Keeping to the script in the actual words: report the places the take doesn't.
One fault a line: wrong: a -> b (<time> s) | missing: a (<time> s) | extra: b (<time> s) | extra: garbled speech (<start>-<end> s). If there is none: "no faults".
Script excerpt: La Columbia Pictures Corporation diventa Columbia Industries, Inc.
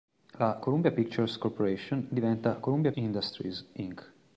no faults